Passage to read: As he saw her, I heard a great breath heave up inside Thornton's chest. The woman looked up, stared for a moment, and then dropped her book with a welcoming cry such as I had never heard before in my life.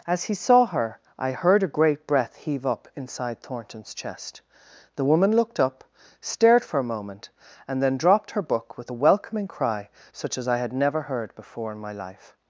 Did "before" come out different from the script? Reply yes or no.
no